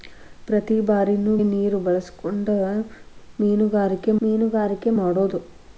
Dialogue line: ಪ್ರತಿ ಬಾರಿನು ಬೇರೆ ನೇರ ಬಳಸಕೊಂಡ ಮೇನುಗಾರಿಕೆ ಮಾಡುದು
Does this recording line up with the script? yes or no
no